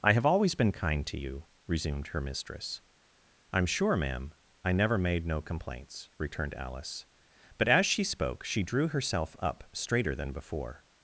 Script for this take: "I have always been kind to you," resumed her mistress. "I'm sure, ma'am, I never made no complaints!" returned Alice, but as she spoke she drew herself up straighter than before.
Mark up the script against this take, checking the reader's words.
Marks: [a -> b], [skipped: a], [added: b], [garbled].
"I have always been kind to you," resumed her mistress. "I'm sure, ma'am, I never made no complaints!" returned Alice, but as she spoke she drew herself up straighter than before.